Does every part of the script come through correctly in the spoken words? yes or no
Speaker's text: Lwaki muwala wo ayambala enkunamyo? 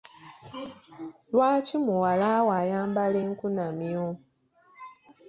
yes